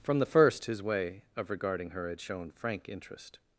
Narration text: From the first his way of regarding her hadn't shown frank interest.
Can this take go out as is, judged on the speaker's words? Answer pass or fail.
fail